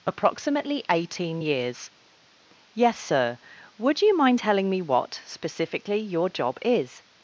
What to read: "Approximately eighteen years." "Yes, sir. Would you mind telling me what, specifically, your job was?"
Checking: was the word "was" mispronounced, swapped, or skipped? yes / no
yes